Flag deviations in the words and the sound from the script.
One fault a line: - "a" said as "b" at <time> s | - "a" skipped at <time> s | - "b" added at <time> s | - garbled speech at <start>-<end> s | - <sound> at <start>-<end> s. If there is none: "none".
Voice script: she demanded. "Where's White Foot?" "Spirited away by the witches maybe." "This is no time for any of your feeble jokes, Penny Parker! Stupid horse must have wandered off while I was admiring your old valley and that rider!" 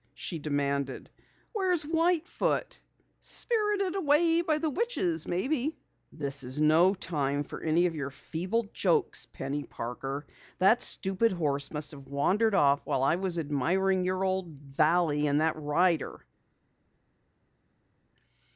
- "That" added at 10.6 s